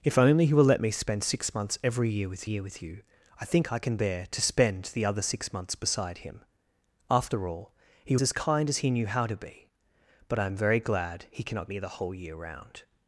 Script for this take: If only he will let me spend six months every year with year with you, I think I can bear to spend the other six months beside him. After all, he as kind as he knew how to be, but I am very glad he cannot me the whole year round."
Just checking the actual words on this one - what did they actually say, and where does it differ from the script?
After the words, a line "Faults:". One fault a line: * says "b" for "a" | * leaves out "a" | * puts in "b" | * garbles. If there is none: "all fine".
If only he will let me spend six months every year with year with you, I think I can bear to spend the other six months beside him. After all, he as kind as he knew how to be, but I am very glad he cannot me the whole year round."
Faults:
all fine